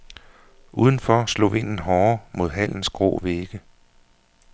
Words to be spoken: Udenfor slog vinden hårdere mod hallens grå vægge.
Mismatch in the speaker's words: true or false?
false